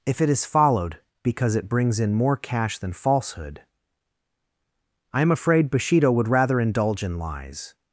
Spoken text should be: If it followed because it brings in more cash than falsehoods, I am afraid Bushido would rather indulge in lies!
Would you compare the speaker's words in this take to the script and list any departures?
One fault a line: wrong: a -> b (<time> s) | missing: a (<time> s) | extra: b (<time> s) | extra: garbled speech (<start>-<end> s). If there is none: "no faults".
extra: is (0.3 s)
wrong: falsehoods -> falsehood (2.9 s)